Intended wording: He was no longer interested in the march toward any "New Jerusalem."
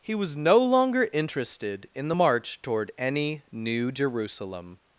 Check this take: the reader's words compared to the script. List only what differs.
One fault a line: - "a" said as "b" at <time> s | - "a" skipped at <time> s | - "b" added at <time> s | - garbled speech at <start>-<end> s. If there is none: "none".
none